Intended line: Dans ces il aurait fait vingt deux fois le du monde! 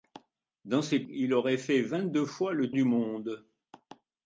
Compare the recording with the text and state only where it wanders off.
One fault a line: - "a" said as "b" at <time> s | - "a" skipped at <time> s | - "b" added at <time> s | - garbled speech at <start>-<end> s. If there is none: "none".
none